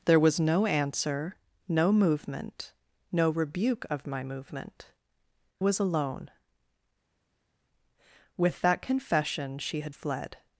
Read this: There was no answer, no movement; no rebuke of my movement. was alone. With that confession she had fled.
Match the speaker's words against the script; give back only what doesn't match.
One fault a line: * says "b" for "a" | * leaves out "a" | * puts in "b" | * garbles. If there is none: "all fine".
all fine